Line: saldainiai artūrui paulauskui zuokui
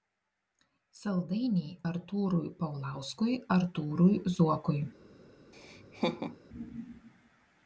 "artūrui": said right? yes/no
yes